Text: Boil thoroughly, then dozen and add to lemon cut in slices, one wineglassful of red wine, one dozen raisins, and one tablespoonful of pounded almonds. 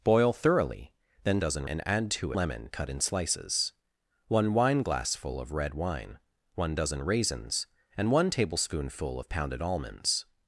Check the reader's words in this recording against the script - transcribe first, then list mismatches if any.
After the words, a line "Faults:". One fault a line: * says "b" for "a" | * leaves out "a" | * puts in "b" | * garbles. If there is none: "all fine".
Boil thoroughly, then dozen and add to lemon cut in slices, one wineglassful of red wine, one dozen raisins, and one tablespoonful of pounded almonds.
Faults:
all fine